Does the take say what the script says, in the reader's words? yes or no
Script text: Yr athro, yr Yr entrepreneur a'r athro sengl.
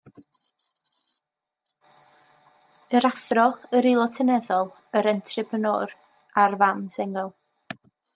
no